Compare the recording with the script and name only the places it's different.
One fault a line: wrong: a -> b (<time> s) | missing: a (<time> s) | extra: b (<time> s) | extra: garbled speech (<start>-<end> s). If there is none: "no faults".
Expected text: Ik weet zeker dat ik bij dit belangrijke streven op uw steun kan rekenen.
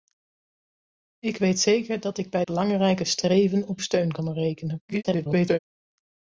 missing: dit (2.5 s)
missing: uw (3.8 s)
extra: garbled speech (4.9-5.6 s)